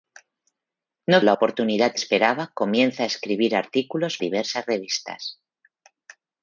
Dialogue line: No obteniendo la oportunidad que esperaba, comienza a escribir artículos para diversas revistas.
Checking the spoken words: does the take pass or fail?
fail